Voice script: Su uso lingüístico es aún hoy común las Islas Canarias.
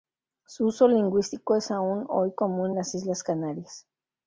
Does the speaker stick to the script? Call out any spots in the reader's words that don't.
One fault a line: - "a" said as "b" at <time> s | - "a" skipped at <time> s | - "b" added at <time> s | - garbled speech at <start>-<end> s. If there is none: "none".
none